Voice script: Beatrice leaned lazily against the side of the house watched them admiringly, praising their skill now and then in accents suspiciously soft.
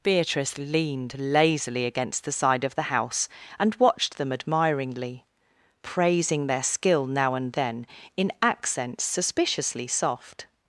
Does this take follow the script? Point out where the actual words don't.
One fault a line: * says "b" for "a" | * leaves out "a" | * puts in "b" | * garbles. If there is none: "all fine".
* puts in "and"